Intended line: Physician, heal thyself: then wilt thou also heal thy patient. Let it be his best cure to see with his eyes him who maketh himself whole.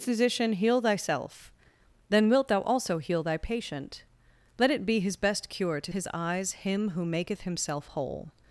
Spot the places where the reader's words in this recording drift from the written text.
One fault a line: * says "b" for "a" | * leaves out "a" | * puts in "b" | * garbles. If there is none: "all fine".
* leaves out "see with"